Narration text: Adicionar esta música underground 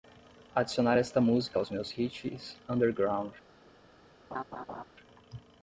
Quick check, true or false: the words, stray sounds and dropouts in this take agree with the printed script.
false